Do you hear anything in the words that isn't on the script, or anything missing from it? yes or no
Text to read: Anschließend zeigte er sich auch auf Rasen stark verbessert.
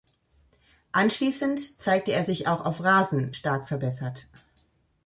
no